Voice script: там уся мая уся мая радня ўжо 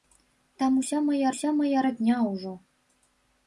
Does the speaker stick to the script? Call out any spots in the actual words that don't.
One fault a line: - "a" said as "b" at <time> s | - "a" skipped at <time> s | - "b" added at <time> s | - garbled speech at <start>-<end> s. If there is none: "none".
none